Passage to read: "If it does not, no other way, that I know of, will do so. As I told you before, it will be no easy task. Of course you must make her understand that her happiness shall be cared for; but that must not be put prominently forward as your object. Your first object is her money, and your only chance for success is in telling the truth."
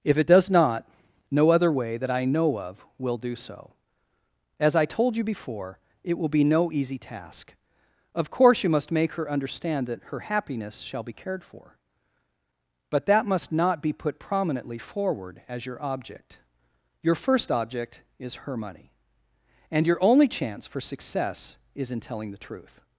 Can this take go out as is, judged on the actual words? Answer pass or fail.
pass